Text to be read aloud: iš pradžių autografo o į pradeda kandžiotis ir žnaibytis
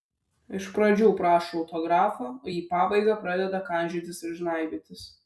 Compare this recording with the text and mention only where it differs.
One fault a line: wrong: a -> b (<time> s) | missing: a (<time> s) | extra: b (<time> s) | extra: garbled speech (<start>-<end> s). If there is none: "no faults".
extra: prašo (1.2 s)
extra: pabaigą (2.7 s)